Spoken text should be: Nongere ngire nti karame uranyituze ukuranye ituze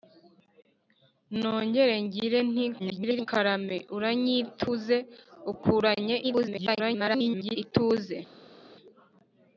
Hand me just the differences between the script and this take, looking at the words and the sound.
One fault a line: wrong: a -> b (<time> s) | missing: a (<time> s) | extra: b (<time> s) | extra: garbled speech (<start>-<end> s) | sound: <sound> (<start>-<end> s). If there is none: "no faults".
extra: garbled speech (2.8-3.3 s)
extra: garbled speech (6.2-7.6 s)